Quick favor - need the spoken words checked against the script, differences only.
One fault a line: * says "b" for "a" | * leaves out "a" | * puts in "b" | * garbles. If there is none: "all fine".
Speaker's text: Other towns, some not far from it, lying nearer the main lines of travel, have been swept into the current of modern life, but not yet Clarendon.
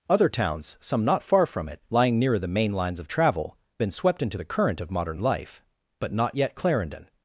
* leaves out "have"